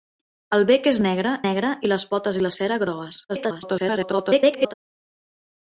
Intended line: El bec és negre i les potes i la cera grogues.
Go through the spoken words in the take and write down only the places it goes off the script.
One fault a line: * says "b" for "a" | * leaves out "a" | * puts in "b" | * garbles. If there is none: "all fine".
* puts in "negre"
* garbles